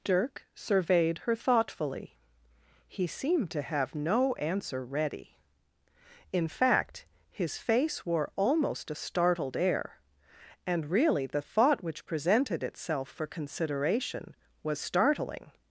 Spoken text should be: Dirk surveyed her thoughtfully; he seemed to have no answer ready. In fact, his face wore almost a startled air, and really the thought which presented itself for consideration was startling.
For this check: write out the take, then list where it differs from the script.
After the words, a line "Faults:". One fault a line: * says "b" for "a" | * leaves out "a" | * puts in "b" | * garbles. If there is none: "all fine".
Dirk surveyed her thoughtfully; he seemed to have no answer ready. In fact, his face wore almost a startled air, and really the thought which presented itself for consideration was startling.
Faults:
all fine